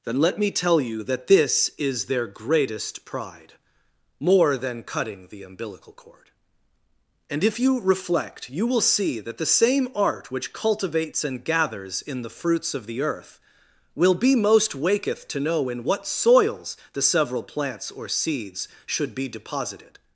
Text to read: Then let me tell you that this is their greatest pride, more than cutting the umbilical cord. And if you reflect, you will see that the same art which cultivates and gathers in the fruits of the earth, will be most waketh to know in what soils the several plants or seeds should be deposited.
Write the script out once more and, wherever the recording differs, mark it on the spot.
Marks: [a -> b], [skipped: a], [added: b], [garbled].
Then let me tell you that this is their greatest pride, more than cutting the umbilical cord. And if you reflect, you will see that the same art which cultivates and gathers in the fruits of the earth, will be most waketh to know in what soils the several plants or seeds should be deposited.